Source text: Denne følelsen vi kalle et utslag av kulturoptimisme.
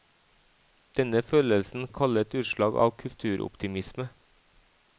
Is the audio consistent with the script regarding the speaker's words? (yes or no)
yes